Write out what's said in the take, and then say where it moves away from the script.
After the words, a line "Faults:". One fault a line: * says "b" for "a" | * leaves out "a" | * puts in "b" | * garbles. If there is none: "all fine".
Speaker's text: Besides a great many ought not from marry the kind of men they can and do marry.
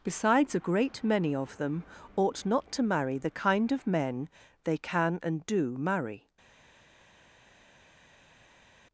Besides a great many of them ought not to marry the kind of men they can and do marry.
Faults:
* puts in "of them"
* says "to" for "from"